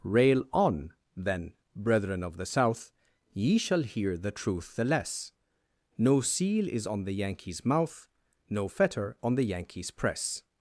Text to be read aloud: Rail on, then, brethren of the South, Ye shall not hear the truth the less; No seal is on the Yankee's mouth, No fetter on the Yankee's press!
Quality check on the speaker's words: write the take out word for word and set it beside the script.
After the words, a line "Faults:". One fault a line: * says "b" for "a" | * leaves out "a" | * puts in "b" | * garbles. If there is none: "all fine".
Rail on, then, brethren of the South, Ye shall hear the truth the less; No seal is on the Yankee's mouth, No fetter on the Yankee's press!
Faults:
* leaves out "not"